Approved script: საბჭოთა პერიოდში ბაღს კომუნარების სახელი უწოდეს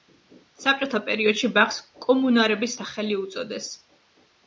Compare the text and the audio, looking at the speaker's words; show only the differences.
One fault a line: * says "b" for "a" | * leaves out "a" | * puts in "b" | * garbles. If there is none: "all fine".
all fine